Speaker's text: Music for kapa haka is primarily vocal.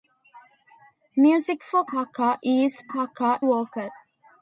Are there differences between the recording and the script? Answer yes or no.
yes